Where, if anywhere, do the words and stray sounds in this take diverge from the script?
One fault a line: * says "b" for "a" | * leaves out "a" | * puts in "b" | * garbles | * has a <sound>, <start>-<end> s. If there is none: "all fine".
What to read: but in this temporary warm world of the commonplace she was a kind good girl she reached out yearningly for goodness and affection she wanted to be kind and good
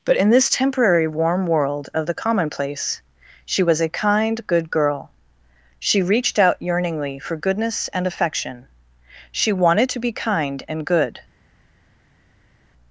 all fine